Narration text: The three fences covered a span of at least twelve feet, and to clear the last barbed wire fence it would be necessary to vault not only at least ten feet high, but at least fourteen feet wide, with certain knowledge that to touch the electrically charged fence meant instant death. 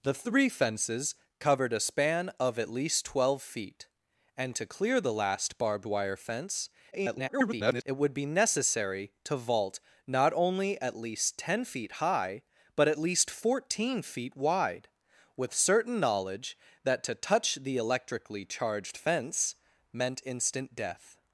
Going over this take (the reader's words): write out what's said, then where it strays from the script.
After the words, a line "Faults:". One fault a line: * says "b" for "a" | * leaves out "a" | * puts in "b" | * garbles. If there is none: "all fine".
The three fences covered a span of at least twelve feet, and to clear the last barbed wire fence [garbled] it would be necessary to vault not only at least ten feet high, but at least fourteen feet wide, with certain knowledge that to touch the electrically charged fence meant instant death.
Faults:
* garbles